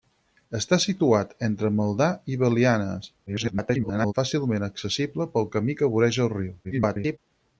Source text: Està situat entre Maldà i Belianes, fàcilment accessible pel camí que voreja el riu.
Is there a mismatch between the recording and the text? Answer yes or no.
yes